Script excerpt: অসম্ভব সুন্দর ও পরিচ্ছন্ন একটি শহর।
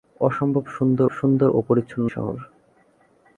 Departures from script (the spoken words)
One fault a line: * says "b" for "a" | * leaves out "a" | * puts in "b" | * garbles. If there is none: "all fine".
* puts in "সুন্দর"
* leaves out "একটি"